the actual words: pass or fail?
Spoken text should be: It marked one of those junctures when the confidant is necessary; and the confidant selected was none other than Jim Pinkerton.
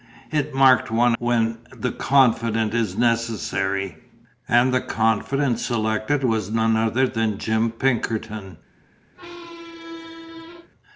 fail